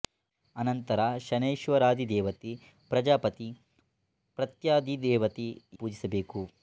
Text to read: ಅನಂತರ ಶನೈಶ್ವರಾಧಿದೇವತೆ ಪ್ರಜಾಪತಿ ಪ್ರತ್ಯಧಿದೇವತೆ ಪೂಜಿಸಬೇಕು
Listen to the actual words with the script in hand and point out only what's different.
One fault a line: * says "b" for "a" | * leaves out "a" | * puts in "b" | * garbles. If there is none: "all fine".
all fine